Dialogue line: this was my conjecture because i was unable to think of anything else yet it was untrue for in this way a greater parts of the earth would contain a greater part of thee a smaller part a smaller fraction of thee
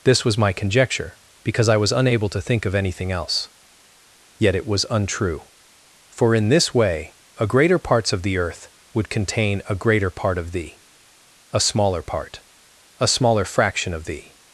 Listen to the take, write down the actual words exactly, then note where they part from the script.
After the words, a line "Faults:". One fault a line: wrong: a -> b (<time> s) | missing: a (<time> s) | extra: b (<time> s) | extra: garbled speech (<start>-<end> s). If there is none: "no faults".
this was my conjecture because i was unable to think of anything else yet it was untrue for in this way a greater parts of the earth would contain a greater part of thee a smaller part a smaller fraction of thee
Faults:
no faults